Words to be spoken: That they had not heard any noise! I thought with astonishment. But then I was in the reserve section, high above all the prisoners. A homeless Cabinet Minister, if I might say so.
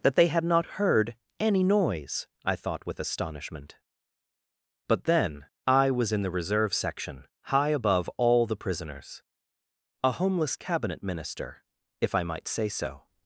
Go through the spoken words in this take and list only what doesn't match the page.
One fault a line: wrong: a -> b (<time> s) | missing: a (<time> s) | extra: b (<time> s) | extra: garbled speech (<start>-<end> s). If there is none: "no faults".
no faults